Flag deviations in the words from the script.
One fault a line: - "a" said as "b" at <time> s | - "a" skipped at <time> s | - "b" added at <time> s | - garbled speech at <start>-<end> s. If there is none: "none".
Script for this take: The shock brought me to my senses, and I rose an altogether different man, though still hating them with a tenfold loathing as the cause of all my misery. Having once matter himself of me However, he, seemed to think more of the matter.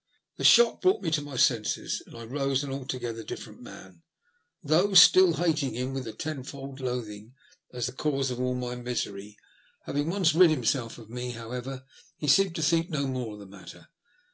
- "them" said as "him" at 5.7 s
- "matter" said as "rid" at 10.4 s
- "no" added at 12.9 s